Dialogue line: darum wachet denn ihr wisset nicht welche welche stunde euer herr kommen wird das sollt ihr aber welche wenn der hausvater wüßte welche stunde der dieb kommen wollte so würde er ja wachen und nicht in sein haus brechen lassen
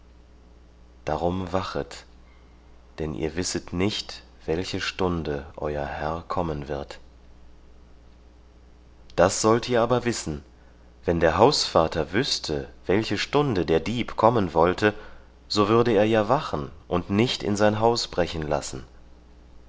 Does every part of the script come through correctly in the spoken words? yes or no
no